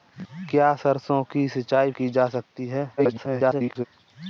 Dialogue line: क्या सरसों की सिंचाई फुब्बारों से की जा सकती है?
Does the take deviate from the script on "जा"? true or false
false